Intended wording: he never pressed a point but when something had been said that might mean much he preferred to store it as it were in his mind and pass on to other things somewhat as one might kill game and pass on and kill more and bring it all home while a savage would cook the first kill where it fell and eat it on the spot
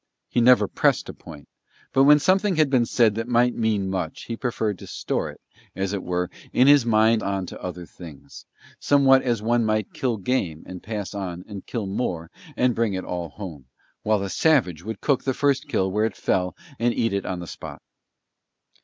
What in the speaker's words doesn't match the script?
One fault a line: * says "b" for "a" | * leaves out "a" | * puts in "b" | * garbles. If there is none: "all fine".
* leaves out "and pass"